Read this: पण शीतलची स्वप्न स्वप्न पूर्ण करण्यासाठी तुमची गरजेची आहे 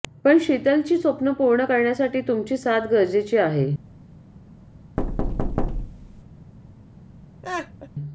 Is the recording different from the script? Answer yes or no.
yes